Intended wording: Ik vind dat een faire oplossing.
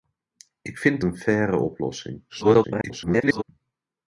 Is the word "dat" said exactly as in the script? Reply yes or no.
no